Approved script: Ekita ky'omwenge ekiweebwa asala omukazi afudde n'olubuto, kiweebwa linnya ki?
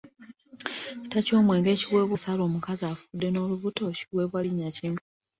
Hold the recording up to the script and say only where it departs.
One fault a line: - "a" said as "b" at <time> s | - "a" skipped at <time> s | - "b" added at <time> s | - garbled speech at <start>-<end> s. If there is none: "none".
none